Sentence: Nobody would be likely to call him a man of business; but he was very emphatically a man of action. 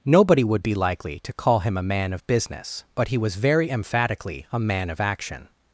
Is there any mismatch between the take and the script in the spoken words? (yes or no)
no